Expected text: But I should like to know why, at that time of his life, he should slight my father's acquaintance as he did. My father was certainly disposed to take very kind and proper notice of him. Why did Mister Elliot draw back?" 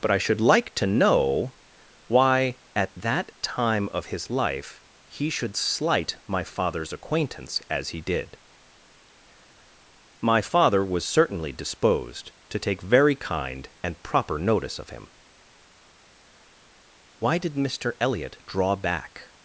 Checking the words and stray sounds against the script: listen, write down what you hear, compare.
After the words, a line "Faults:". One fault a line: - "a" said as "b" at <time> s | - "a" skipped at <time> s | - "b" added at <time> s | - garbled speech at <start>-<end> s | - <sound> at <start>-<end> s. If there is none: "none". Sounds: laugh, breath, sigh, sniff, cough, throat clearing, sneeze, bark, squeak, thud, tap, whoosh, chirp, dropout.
But I should like to know why, at that time of his life, he should slight my father's acquaintance as he did. My father was certainly disposed to take very kind and proper notice of him. Why did Mister Elliot draw back?"
Faults:
none